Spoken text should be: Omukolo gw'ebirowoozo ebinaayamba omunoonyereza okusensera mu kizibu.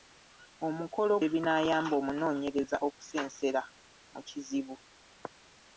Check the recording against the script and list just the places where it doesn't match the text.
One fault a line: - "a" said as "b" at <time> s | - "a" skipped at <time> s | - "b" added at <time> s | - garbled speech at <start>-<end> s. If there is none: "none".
- "gw'ebirowoozo" skipped at 1.1 s